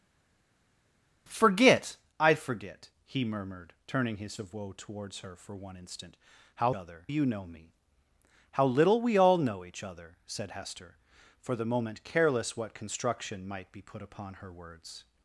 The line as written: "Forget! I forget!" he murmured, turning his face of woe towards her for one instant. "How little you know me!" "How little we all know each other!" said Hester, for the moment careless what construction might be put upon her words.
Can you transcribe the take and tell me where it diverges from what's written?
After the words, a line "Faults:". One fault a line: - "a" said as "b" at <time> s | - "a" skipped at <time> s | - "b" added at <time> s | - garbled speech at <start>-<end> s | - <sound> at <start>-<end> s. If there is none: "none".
"Forget! I forget!" he murmured, turning his of woe towards her for one instant. "How other you know me!" "How little we all know each other!" said Hester, for the moment careless what construction might be put upon her words.
Faults:
- "face" skipped at 4.4 s
- "little" said as "other" at 6.7 s